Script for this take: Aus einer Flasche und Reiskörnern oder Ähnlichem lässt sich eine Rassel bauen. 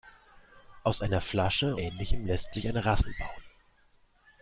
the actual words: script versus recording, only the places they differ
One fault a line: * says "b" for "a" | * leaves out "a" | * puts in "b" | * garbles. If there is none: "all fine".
* leaves out "und Reiskörnern oder"